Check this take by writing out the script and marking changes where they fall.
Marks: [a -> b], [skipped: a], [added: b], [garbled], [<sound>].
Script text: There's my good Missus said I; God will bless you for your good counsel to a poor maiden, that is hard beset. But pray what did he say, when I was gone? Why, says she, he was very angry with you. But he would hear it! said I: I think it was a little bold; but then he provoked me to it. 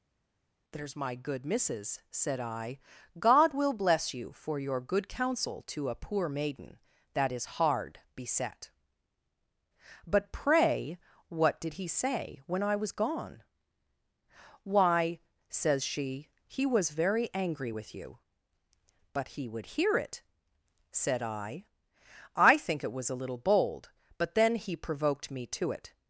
There's my good Missus said I; God will bless you for your good counsel to a poor maiden, that is hard beset. But pray what did he say, when I was gone? Why, says she, he was very angry with you. But he would hear it! said I: I think it was a little bold; but then he provoked me to it.